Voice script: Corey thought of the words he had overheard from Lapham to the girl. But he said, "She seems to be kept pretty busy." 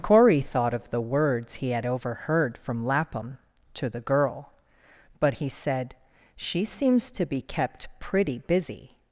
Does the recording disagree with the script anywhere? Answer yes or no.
no